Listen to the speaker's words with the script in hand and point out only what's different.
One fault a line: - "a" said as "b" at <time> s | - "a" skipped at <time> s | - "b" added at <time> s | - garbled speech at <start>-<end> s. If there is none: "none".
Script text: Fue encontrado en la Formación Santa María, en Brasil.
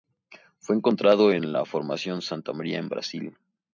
none